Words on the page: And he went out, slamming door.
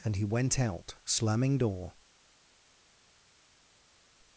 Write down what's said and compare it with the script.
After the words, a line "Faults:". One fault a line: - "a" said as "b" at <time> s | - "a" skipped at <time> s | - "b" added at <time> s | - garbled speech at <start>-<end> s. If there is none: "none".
And he went out, slamming door.
Faults:
none